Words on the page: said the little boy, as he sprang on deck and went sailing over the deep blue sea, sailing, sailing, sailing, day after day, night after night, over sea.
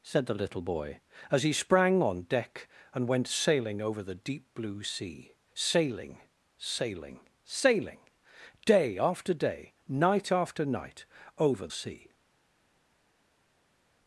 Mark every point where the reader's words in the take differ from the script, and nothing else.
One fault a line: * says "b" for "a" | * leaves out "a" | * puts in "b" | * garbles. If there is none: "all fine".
all fine